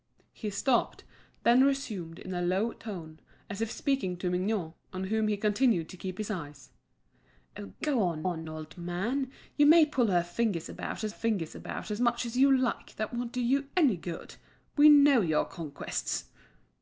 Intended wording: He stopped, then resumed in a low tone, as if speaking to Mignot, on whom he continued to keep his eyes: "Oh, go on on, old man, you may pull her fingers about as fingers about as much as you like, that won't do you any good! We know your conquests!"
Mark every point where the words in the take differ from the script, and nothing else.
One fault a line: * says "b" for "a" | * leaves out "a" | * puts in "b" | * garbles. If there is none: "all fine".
all fine